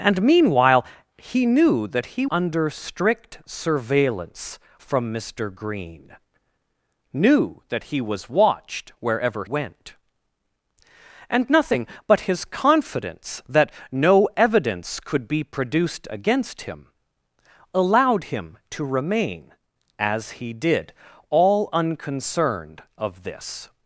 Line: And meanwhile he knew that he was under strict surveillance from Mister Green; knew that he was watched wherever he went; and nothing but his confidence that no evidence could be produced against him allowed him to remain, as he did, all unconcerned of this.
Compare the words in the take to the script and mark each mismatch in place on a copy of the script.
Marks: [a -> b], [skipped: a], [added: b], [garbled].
And meanwhile he knew that he [skipped: was] under strict surveillance from Mister Green; knew that he was watched wherever [skipped: he] went; and nothing but his confidence that no evidence could be produced against him allowed him to remain, as he did, all unconcerned of this.